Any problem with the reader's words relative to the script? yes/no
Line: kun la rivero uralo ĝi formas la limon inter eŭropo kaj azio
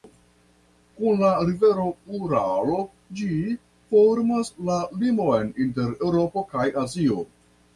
no